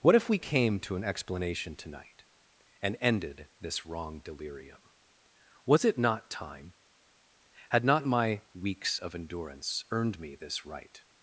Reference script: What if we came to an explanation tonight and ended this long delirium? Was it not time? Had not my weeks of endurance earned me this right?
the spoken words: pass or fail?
fail